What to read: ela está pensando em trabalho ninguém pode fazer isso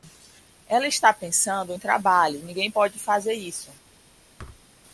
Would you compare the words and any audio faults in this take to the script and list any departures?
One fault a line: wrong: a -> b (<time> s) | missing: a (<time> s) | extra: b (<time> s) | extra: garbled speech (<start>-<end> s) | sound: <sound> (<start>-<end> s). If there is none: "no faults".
sound: thud (4.4-4.6 s)